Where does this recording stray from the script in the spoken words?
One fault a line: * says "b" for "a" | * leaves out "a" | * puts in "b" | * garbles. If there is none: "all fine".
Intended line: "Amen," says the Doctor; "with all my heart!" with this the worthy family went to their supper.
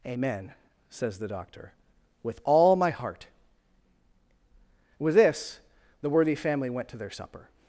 all fine